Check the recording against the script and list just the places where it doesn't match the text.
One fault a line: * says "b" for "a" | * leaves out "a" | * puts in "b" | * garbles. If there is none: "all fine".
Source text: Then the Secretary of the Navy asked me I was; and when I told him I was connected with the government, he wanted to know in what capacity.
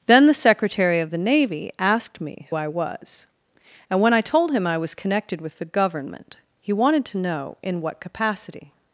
all fine